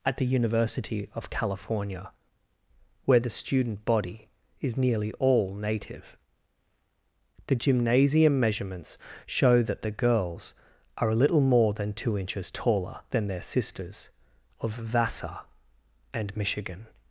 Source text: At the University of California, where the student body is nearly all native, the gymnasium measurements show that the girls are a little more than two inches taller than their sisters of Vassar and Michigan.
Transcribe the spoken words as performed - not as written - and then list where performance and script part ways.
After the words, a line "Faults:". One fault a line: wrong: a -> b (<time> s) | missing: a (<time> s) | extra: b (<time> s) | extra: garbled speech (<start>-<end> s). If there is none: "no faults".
At the University of California, where the student body is nearly all native, the gymnasium measurements show that the girls are a little more than two inches taller than their sisters of Vassar and Michigan.
Faults:
no faults